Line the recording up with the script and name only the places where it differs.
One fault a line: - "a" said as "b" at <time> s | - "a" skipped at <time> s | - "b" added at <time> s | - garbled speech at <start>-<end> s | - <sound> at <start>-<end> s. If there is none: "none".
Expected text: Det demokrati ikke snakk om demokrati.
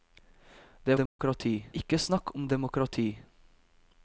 - dropout at 1.1-1.2 s